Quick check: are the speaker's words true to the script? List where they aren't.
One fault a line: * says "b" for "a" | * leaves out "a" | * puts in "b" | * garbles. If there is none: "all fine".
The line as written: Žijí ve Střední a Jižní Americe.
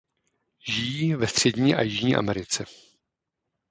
all fine